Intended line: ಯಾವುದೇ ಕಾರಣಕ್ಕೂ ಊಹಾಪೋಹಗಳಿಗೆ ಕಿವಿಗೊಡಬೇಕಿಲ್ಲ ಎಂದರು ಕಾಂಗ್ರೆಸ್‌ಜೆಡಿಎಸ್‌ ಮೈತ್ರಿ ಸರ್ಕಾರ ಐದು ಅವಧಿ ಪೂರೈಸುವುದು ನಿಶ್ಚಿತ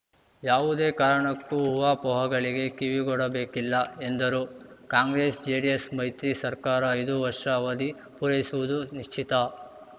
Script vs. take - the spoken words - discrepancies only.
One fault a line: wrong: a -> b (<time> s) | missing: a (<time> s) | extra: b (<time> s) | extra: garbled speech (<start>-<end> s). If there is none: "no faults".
extra: ವರ್ಷ (7.2 s)